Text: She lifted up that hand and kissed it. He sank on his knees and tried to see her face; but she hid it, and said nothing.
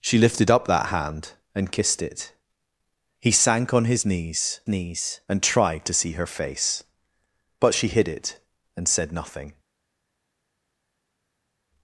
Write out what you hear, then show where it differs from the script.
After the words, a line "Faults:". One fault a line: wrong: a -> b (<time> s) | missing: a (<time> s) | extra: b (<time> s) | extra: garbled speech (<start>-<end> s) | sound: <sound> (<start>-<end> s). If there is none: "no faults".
She lifted up that hand and kissed it. He sank on his knees knees and tried to see her face; but she hid it, and said nothing.
Faults:
extra: knees (4.7 s)